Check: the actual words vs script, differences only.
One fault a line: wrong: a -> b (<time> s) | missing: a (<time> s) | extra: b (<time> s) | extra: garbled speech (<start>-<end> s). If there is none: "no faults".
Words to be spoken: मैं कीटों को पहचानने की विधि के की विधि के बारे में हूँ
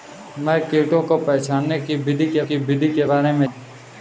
no faults